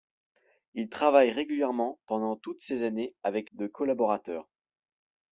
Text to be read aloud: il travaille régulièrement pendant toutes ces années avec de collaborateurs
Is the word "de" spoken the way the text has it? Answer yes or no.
yes